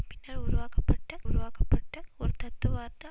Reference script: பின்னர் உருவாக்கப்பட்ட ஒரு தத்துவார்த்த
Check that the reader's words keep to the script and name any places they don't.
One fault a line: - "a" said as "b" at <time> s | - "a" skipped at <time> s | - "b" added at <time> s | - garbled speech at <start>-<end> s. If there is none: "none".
- "உருவாக்கப்பட்ட" added at 1.2 s